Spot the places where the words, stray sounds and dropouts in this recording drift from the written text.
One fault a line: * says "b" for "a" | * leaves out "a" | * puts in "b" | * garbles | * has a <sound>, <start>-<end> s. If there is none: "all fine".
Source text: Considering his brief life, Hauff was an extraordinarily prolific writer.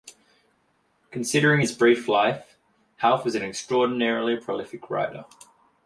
all fine